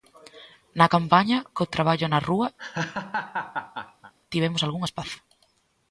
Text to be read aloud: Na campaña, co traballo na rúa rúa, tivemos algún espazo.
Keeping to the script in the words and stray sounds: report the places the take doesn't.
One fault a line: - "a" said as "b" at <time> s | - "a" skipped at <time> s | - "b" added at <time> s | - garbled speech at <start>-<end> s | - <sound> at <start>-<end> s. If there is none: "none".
- "rúa" skipped at 2.5 s
- laugh at 2.6-4.1 s